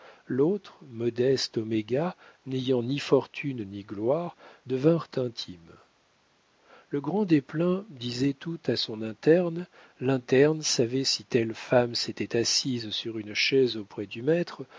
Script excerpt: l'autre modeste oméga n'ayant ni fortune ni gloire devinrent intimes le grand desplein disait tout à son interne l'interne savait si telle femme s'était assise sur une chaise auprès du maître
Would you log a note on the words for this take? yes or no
no